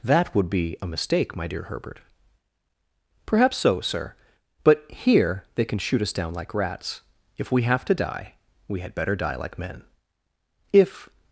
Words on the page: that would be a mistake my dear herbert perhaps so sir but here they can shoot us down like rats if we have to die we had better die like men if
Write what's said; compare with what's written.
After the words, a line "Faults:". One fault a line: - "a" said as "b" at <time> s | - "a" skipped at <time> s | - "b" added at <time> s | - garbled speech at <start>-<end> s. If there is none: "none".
that would be a mistake my dear herbert perhaps so sir but here they can shoot us down like rats if we have to die we had better die like men if
Faults:
none